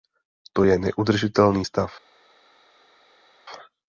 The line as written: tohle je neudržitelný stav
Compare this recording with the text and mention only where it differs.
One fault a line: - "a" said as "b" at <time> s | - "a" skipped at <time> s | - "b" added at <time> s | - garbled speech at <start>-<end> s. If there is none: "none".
- "tohle" said as "to" at 0.5 s